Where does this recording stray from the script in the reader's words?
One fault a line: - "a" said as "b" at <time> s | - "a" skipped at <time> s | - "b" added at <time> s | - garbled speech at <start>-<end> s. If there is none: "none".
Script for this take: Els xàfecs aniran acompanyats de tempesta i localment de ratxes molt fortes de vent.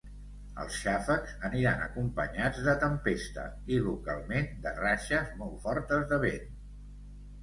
none